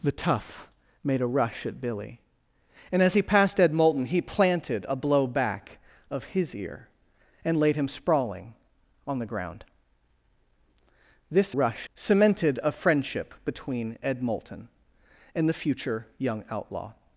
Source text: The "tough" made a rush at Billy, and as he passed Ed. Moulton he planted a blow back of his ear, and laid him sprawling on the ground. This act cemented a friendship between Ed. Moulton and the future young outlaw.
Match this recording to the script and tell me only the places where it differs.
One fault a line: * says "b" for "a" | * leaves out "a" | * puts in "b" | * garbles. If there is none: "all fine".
* says "rush" for "act"